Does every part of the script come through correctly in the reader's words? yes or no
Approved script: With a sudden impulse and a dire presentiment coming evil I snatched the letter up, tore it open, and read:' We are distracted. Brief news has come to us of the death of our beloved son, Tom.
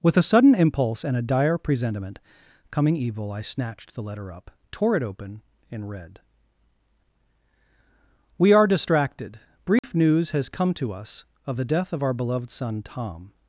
yes